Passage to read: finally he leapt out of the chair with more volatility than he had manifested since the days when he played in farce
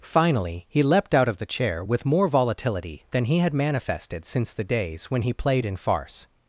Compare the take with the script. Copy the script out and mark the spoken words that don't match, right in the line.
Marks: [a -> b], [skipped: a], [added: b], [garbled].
finally he leapt out of the chair with more volatility than he had manifested since the days when he played in farce